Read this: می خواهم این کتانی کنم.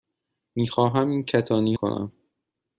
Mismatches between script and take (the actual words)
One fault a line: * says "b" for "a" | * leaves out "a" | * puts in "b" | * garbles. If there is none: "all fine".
all fine